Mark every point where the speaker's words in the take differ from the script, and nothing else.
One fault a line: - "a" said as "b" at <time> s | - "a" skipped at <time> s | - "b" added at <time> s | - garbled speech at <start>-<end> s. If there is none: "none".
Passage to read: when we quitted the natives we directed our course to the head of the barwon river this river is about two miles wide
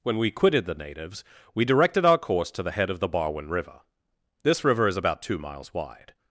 none